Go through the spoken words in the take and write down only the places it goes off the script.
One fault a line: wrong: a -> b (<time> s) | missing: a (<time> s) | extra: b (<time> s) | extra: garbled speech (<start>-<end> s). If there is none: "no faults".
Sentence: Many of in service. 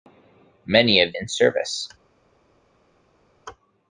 no faults